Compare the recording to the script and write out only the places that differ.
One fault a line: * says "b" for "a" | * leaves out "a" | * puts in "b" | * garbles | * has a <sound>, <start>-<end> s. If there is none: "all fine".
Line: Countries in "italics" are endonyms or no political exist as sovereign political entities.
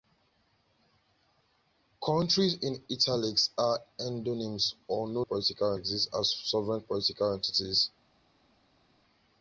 all fine